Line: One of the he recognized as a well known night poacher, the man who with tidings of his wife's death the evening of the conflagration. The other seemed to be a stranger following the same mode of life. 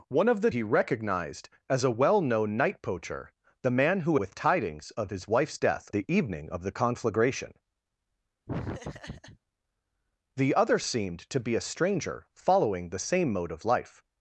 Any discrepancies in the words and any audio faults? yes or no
yes